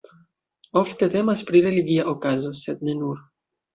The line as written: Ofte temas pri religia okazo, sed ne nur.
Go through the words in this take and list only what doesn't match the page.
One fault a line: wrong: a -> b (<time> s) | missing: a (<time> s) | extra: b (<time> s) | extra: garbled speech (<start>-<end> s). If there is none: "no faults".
no faults